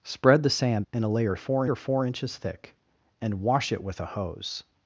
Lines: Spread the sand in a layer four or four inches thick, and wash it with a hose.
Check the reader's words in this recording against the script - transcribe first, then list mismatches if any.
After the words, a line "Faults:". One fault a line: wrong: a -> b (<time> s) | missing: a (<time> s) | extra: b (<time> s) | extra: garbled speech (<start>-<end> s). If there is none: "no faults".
Spread the sand in a layer four or four inches thick, and wash it with a hose.
Faults:
no faults